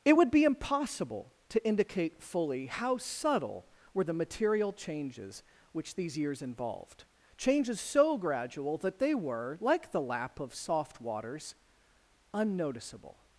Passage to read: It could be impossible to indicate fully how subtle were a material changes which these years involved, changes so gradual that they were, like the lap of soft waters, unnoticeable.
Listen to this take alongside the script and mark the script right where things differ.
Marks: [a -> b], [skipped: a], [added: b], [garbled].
It [could -> would] be impossible to indicate fully how subtle were [a -> the] material changes which these years involved, changes so gradual that they were, like the lap of soft waters, unnoticeable.